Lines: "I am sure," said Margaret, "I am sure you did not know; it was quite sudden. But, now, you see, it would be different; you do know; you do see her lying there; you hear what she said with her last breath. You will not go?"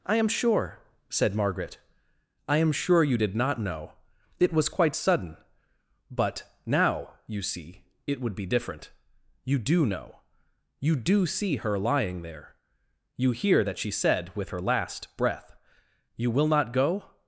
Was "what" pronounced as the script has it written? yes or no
no